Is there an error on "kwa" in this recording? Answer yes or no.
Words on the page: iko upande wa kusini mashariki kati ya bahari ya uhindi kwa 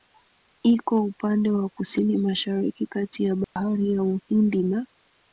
yes